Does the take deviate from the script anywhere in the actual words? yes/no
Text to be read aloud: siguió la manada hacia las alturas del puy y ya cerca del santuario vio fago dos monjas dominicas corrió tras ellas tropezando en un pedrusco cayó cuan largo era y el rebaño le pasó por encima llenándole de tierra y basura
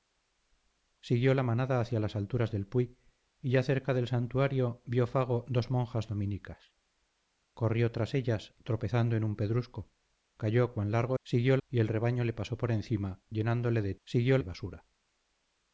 yes